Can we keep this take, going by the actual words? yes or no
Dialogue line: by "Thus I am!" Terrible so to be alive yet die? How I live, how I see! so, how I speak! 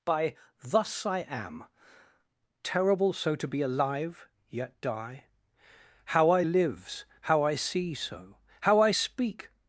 no